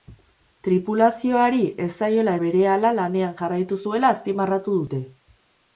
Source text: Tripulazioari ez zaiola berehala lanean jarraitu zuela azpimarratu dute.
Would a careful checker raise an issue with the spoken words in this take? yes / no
no